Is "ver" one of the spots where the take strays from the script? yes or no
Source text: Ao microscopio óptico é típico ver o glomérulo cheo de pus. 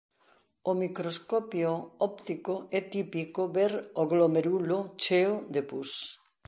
no